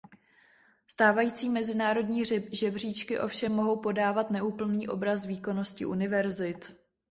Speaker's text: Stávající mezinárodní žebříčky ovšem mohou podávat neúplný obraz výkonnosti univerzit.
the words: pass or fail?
pass